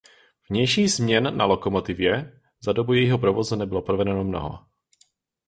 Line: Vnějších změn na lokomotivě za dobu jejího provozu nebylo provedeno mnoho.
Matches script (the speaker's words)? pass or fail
pass